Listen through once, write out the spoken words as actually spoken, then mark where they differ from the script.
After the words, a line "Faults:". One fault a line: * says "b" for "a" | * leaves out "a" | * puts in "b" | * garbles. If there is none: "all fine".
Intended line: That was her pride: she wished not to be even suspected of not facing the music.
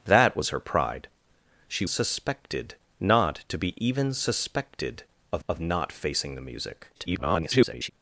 That was her pride: she suspected not to be even suspected of of not facing the music. [garbled]
Faults:
* says "suspected" for "wished"
* puts in "of"
* garbles